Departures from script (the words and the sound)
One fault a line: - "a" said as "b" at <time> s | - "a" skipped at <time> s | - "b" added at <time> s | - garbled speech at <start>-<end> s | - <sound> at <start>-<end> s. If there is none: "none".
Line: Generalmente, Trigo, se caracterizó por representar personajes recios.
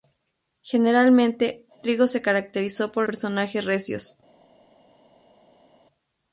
- "representar" skipped at 3.0 s